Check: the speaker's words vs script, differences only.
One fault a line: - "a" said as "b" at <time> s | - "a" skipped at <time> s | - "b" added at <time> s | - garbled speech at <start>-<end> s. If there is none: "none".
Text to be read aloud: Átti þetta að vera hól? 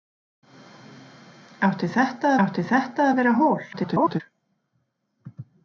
- "átti þetta" added at 2.4 s
- garbled speech at 3.7-4.2 s